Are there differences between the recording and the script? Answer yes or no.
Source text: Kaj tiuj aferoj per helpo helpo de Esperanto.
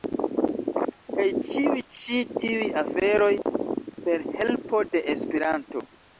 yes